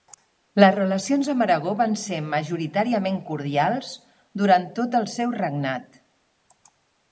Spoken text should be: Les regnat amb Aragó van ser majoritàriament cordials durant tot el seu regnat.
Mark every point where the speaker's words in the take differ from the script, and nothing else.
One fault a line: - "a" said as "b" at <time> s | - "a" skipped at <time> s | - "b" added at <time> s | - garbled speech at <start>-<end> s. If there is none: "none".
- "regnat" said as "relacions" at 0.8 s